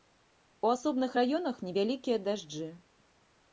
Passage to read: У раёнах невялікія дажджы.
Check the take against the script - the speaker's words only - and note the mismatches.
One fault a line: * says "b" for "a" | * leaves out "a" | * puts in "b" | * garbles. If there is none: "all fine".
* puts in "асобных"